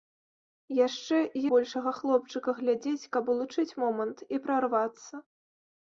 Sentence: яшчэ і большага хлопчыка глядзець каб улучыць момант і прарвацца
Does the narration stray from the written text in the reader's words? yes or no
no